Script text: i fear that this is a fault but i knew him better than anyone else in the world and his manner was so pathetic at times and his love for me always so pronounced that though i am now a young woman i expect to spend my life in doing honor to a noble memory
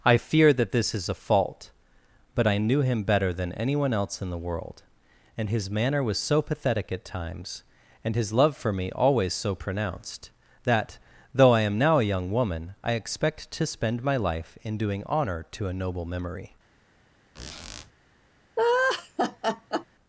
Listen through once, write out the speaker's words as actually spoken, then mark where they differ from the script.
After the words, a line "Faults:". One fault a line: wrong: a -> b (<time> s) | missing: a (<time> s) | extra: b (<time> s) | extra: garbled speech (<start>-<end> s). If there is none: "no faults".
i fear that this is a fault but i knew him better than anyone else in the world and his manner was so pathetic at times and his love for me always so pronounced that though i am now a young woman i expect to spend my life in doing honor to a noble memory
Faults:
no faults